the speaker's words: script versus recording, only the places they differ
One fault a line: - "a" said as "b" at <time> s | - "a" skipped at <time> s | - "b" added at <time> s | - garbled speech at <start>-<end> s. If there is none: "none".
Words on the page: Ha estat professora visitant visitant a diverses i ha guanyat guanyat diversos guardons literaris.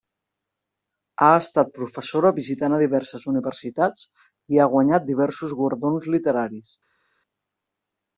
- "visitant" skipped at 2.8 s
- "universitats" added at 3.3 s
- "guanyat" skipped at 5.1 s